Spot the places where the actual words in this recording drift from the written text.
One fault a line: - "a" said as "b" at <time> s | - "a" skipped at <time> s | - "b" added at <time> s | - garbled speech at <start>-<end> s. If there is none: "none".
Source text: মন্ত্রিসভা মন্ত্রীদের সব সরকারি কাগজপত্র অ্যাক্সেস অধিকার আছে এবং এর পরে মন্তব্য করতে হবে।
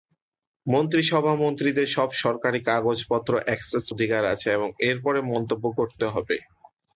none